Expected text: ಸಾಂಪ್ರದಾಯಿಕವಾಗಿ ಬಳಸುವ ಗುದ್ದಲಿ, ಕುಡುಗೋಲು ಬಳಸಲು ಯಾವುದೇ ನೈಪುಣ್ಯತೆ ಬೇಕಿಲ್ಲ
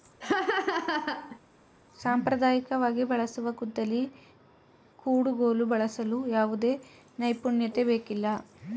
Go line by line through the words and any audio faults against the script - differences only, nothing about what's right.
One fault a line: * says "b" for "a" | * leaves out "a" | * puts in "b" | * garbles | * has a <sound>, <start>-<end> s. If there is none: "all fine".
* has a laugh, 0.2-1.4 s